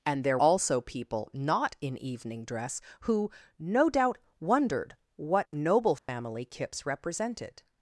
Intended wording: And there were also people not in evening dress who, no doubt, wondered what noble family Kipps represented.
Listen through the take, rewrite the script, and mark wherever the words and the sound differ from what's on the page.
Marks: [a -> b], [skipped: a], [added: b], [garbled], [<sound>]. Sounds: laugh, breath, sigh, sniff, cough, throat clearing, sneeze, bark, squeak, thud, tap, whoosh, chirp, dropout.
And there [skipped: were] also people not in evening dress who, no doubt, wondered what noble family [dropout] Kipps represented.